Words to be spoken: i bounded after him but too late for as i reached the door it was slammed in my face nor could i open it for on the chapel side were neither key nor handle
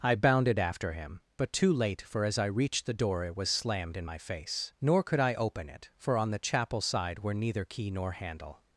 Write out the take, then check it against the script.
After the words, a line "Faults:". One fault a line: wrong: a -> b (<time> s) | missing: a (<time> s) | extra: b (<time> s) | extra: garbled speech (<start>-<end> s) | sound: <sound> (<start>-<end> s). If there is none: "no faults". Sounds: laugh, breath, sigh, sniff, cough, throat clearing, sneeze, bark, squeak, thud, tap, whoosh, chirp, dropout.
i bounded after him but too late for as i reached the door it was slammed in my face nor could i open it for on the chapel side were neither key nor handle
Faults:
no faults